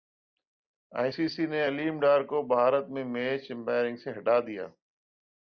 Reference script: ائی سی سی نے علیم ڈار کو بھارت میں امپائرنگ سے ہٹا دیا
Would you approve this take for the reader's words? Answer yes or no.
no